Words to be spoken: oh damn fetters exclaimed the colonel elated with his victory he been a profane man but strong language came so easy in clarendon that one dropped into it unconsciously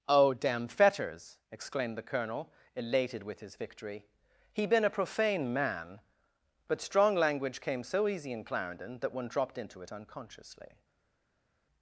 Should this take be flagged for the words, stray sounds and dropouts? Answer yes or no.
no